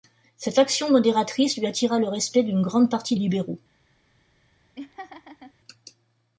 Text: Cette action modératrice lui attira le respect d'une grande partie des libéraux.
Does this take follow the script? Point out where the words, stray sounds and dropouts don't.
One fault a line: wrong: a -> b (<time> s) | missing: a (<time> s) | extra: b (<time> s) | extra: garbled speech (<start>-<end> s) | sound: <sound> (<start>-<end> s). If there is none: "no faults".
missing: des (3.1 s)
sound: laugh (4.7-5.5 s)